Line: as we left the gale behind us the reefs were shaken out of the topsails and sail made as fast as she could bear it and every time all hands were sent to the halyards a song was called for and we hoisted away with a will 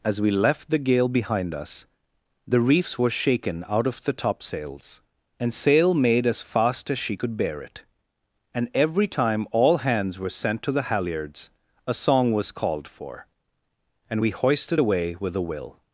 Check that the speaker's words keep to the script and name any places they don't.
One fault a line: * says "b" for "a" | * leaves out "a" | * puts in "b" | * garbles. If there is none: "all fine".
all fine